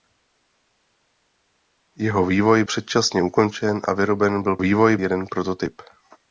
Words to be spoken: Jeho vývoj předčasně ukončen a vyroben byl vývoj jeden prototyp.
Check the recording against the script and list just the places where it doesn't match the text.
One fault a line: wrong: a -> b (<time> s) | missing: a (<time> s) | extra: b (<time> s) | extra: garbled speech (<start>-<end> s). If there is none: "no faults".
no faults